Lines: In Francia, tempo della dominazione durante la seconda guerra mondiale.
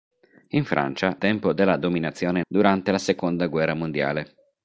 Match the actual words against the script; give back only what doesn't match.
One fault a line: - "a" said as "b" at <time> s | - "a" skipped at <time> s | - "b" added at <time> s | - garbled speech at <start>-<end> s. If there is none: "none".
none